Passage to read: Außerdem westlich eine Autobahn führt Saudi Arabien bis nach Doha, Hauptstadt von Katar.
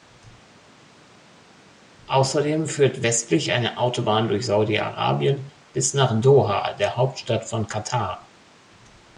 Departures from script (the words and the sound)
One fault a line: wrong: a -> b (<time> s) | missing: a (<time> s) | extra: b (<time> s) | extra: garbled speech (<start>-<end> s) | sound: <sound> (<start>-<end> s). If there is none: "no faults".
extra: führt (2.7 s)
wrong: führt -> durch (4.3 s)
extra: der (6.7 s)